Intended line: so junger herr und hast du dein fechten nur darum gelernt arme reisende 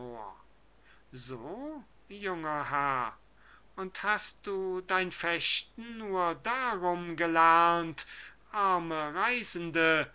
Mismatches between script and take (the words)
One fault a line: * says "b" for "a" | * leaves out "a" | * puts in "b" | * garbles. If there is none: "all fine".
all fine